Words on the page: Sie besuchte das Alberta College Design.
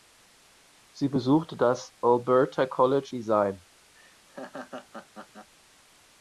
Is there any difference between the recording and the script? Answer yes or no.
no